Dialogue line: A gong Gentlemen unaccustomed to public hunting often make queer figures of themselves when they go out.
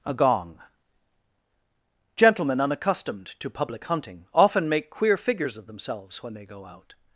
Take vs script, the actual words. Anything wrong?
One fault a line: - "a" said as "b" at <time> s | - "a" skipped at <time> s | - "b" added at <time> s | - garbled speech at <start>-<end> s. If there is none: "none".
none